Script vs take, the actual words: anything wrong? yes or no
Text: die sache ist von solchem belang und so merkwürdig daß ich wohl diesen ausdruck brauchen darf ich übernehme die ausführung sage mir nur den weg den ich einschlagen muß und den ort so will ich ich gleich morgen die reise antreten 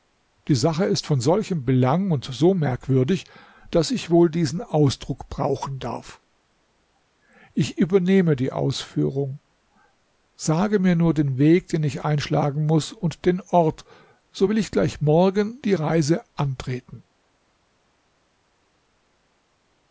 yes